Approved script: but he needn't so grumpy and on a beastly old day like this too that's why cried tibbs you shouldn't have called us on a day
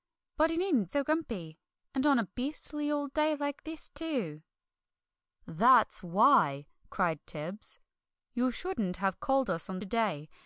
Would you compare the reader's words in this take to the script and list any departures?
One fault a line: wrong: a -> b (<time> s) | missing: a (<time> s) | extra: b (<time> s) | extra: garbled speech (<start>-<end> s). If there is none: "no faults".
no faults